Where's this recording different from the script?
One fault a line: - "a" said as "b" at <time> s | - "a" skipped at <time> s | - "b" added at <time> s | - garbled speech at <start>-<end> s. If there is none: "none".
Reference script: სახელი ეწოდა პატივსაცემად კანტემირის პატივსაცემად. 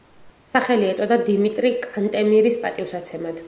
- "პატივსაცემად" said as "დიმიტრი" at 1.3 s